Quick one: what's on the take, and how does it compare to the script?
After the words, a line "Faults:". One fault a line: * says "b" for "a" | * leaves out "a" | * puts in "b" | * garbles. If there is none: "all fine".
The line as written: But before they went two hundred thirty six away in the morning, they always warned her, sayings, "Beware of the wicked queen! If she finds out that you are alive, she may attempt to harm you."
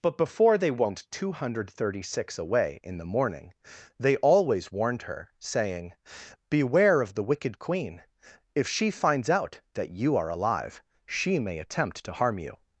But before they went two hundred thirty six away in the morning, they always warned her, saying, "Beware of the wicked queen! If she finds out that you are alive, she may attempt to harm you."
Faults:
* says "saying" for "sayings"